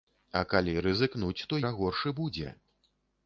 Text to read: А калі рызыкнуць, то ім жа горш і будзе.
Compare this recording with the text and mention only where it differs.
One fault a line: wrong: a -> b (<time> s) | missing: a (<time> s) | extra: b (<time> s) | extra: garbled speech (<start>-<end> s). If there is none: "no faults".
missing: ім (1.6 s)